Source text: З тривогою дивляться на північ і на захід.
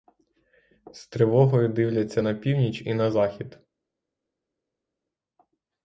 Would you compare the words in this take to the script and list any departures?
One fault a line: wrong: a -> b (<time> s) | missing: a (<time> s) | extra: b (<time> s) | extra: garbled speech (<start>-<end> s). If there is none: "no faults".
no faults